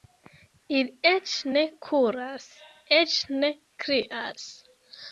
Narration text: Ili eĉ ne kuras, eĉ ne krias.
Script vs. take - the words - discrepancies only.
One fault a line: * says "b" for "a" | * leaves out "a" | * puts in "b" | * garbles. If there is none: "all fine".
all fine